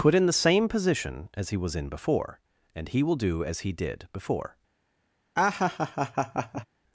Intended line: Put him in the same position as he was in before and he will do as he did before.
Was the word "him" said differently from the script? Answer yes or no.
yes